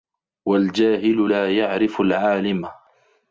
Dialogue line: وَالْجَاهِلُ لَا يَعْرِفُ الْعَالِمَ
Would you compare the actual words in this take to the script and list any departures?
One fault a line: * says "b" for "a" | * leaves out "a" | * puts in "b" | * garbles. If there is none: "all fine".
all fine